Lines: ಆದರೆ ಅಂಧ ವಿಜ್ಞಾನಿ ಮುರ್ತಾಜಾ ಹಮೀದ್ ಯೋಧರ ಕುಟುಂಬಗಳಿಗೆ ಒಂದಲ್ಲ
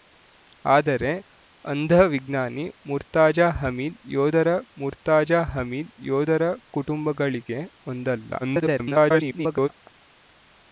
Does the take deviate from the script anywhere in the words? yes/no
yes